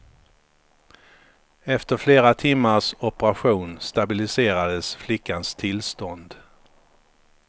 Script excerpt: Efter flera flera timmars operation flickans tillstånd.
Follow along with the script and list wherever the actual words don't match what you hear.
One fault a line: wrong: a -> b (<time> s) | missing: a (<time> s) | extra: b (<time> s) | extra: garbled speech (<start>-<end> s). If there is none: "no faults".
missing: flera (2.3 s)
extra: stabiliserades (3.8 s)